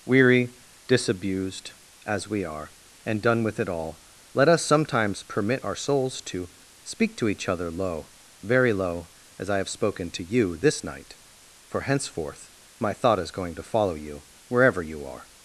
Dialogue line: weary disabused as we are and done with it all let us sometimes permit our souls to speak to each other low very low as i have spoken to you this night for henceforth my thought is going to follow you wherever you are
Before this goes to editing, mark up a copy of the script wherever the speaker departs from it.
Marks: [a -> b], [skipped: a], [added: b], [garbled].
weary disabused as we are and done with it all let us sometimes permit our souls to speak to each other low very low as i have spoken to you this night for henceforth my thought is going to follow you wherever you are